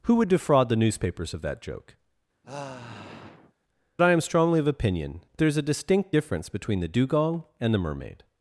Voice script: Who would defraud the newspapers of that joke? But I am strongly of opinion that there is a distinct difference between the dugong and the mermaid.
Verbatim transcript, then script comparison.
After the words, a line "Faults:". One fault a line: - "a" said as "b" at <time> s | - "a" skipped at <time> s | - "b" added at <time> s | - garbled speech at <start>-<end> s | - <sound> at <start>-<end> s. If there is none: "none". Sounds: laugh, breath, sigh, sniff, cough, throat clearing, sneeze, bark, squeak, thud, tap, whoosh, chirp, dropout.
Who would defraud the newspapers of that joke? I am strongly of opinion there is a distinct difference between the dugong and the mermaid.
Faults:
- "But" skipped at 1.9 s
- sigh at 2.4-3.5 s
- "that" skipped at 5.2 s